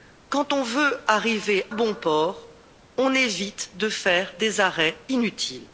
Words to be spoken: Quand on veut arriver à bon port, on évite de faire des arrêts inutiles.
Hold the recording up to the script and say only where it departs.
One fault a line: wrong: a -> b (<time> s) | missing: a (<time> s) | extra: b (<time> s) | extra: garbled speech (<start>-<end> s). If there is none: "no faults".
missing: à (1.6 s)